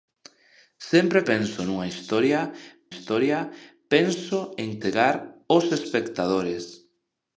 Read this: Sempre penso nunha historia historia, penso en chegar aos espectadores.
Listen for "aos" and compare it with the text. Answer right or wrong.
right